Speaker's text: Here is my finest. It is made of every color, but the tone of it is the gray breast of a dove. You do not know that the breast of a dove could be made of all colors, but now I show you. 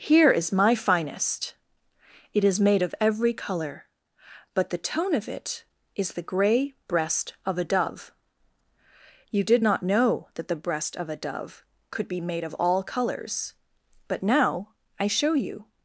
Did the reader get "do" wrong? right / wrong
wrong